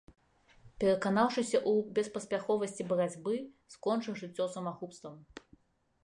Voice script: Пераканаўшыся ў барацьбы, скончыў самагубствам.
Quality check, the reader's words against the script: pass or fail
fail